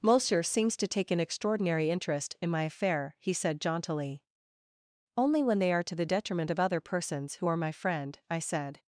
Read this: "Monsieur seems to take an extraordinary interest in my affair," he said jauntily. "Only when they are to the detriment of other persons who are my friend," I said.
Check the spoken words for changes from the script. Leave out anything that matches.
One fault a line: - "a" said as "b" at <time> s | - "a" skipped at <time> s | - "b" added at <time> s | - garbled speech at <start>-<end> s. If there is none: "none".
none